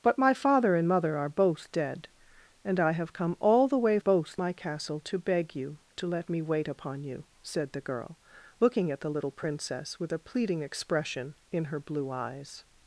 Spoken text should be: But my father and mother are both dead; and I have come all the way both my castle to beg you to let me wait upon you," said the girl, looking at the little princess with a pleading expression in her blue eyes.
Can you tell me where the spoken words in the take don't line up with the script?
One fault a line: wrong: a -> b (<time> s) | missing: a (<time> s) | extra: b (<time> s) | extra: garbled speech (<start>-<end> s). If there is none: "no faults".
no faults